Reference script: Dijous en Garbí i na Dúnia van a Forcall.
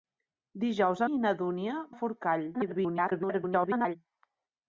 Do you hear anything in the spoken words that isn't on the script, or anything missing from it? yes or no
yes